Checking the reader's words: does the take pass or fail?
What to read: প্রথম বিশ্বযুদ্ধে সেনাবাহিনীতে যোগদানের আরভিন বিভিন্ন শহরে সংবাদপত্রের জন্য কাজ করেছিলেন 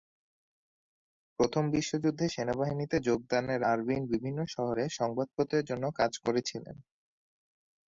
pass